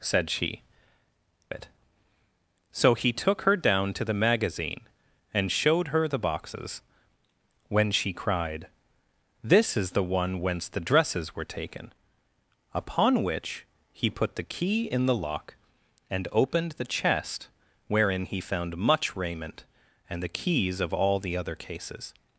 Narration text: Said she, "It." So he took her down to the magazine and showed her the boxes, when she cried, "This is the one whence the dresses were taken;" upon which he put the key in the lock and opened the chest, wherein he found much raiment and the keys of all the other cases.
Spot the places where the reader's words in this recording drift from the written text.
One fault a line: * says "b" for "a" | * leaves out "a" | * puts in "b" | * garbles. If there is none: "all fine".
all fine